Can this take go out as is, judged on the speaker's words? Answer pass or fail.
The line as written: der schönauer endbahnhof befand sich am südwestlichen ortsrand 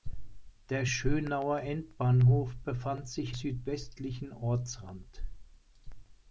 fail